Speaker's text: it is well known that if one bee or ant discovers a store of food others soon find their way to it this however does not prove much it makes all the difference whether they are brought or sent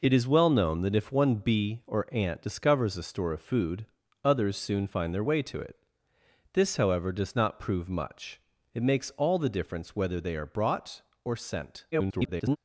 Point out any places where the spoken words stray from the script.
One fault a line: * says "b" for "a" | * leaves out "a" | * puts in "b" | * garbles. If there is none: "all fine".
* garbles